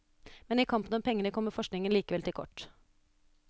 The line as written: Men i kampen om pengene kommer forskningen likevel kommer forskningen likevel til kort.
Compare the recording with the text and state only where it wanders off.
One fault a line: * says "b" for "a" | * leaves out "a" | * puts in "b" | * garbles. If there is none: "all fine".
* leaves out "kommer forskningen likevel"